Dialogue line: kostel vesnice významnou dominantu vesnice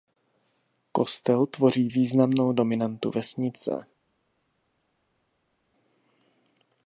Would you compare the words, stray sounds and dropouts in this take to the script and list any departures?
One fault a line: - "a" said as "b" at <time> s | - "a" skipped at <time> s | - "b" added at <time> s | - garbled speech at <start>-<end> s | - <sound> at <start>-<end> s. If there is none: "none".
- "vesnice" said as "tvoří" at 1.4 s